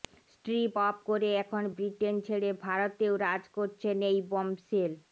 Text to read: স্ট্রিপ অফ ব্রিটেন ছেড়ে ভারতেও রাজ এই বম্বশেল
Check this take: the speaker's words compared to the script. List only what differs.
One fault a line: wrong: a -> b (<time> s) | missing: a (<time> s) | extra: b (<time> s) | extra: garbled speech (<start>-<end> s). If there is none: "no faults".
extra: করে এখন (1.1 s)
extra: করছেন (3.6 s)